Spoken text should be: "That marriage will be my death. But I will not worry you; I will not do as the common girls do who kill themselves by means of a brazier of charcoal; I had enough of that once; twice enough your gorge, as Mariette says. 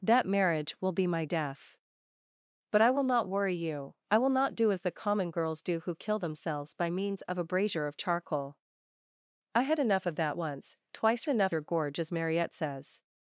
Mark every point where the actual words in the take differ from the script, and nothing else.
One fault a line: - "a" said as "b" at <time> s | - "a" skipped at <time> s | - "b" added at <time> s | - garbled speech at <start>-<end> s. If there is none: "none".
none